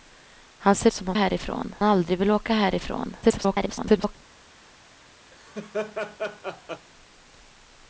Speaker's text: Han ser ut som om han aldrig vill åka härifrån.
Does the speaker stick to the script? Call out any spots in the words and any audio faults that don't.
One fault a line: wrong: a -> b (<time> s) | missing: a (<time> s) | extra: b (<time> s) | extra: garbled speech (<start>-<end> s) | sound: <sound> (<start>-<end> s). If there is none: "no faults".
missing: ut (0.9 s)
wrong: han -> härifrån (1.1 s)
extra: garbled speech (3.2-4.2 s)
sound: laugh (5.3-6.9 s)